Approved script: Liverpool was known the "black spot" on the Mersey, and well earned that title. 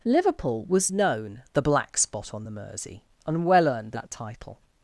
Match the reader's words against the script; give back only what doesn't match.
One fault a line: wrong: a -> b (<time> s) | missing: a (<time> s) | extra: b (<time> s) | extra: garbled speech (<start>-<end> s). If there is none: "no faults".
no faults